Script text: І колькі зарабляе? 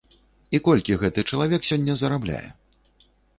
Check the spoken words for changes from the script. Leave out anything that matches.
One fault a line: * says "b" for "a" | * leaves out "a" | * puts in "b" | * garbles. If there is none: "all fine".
* puts in "гэты чалавек сёння"